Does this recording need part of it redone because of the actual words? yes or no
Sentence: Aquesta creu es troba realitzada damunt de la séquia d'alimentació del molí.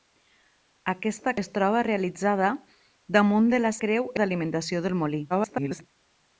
yes